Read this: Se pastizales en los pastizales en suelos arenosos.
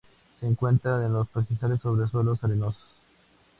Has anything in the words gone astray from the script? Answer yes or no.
yes